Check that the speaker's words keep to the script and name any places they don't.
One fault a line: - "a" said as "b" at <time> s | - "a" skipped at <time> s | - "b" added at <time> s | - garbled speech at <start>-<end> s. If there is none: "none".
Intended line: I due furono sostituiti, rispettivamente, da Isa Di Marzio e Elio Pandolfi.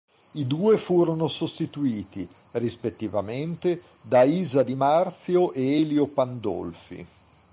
none